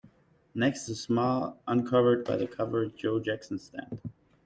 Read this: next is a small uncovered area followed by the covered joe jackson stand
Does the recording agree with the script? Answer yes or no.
no